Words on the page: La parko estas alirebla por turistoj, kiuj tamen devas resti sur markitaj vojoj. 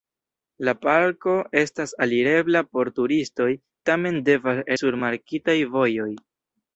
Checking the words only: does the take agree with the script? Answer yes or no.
no